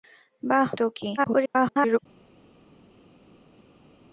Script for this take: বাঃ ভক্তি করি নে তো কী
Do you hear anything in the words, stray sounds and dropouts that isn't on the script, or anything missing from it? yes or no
yes